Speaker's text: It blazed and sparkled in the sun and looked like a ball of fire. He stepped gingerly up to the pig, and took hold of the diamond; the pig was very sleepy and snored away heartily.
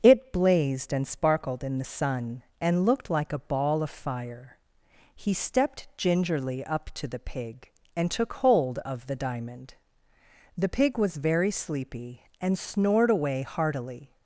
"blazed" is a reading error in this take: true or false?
false